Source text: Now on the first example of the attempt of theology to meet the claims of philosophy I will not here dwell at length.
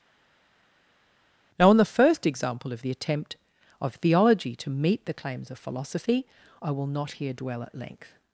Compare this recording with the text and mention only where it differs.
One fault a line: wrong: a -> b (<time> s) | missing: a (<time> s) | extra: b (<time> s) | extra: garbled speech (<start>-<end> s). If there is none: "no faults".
no faults